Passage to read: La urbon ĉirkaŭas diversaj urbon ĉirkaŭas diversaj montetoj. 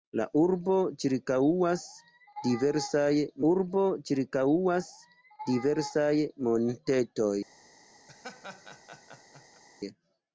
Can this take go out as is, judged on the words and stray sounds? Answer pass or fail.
fail